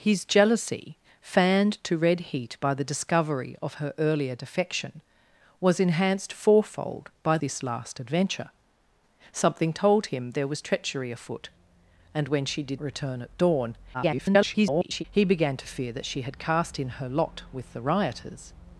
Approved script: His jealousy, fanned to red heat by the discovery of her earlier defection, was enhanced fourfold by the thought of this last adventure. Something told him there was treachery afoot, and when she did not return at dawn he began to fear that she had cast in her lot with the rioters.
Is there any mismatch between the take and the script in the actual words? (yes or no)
yes